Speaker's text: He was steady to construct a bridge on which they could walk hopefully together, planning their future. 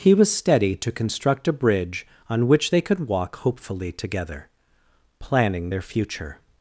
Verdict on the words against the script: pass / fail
pass